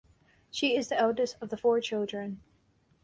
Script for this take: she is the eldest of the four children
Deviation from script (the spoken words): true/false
false